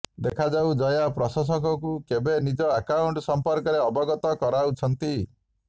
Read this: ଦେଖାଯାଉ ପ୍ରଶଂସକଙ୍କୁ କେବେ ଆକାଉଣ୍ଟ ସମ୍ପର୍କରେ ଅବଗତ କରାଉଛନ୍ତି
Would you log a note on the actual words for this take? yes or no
yes